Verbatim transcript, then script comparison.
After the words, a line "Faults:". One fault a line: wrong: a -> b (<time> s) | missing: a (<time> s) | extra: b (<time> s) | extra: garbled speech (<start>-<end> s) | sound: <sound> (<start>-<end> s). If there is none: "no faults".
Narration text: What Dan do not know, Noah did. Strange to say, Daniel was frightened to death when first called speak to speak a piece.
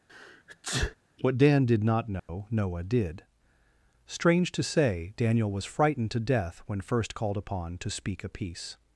What Dan did not know, Noah did. Strange to say, Daniel was frightened to death when first called upon to speak a piece.
Faults:
sound: sneeze (0.1-1.0 s)
wrong: do -> did (1.6 s)
sound: dropout (2.2-2.3 s)
wrong: speak -> upon (7.4 s)